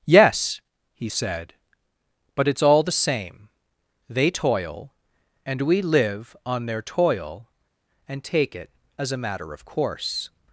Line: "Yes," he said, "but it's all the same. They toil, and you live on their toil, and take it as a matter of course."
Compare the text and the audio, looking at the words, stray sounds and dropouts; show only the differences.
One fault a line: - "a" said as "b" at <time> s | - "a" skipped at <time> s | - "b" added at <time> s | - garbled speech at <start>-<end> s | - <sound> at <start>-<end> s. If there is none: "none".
- "you" said as "we" at 5.6 s